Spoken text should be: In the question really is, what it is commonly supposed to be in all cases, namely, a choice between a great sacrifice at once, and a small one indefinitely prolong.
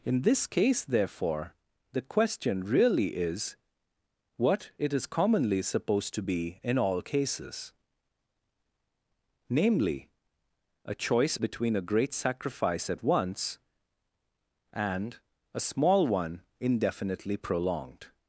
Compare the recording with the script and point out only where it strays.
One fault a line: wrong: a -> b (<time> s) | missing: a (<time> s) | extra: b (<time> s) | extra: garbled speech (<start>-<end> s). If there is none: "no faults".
extra: this case therefore (0.2 s)
wrong: prolong -> prolonged (17.4 s)